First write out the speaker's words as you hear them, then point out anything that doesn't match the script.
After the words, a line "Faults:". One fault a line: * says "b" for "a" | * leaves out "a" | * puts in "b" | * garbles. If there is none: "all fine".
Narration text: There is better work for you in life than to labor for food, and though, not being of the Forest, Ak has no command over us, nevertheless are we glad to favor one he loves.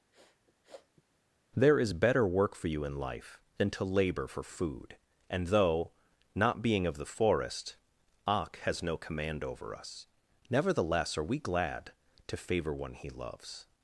There is better work for you in life than to labor for food, and though, not being of the Forest, Ak has no command over us, nevertheless are we glad to favor one he loves.
Faults:
all fine